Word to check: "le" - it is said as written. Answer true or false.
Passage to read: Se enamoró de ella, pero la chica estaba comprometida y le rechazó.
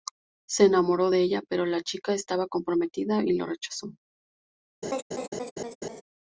false